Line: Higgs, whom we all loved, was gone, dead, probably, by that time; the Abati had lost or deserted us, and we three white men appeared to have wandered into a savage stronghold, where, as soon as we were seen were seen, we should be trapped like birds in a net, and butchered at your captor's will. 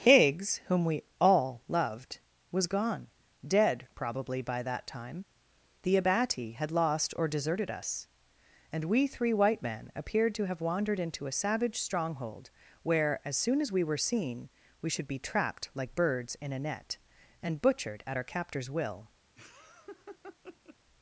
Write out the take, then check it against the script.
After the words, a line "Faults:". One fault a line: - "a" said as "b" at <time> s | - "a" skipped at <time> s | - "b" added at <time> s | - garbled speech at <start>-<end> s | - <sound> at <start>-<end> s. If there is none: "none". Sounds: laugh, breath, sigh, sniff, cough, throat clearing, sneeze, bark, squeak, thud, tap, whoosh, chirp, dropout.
Higgs, whom we all loved, was gone, dead, probably, by that time; the Abati had lost or deserted us, and we three white men appeared to have wandered into a savage stronghold, where, as soon as we were seen, we should be trapped like birds in a net, and butchered at our captor's will.
Faults:
- "were seen" skipped at 14.5 s
- "your" said as "our" at 18.1 s
- laugh at 19.4-20.8 s